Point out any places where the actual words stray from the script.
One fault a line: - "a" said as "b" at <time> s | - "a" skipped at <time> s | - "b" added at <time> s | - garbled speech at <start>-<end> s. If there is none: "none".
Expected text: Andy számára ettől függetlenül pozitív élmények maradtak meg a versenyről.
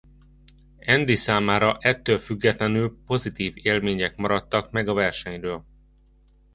none